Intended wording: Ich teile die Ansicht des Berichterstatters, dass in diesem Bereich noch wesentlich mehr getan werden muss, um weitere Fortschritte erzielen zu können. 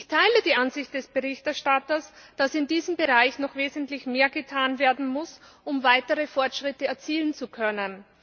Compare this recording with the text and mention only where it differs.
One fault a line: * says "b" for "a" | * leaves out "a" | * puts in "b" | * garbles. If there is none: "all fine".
all fine